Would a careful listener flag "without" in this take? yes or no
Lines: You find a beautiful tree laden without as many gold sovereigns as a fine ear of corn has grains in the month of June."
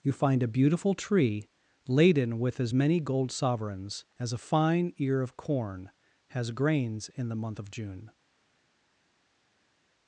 yes